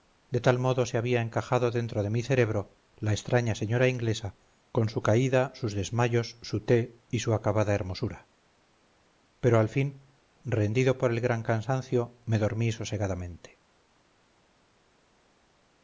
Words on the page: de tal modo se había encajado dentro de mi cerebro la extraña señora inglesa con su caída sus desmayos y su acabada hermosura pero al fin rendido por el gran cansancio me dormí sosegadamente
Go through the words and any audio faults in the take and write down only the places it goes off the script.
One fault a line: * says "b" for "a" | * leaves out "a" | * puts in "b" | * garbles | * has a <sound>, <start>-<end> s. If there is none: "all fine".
* puts in "su té"